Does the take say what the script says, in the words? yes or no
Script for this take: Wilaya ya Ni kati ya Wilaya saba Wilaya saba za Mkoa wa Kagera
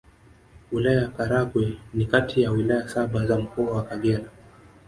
no